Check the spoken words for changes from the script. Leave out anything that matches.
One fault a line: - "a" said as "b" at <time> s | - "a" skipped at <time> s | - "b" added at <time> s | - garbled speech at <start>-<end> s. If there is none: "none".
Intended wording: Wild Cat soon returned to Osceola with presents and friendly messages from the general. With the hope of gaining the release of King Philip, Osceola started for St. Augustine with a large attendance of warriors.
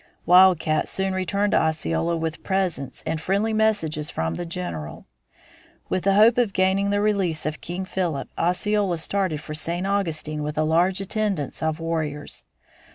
none